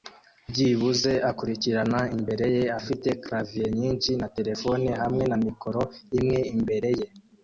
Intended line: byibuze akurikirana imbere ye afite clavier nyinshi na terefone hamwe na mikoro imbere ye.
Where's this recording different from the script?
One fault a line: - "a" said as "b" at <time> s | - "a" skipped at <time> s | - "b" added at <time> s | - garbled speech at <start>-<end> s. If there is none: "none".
- "imwe" added at 6.2 s